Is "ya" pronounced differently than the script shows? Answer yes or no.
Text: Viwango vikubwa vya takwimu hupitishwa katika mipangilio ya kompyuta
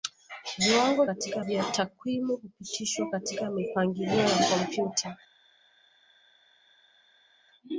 no